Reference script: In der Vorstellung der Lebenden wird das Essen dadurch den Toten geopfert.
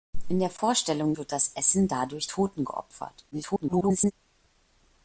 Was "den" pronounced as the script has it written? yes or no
no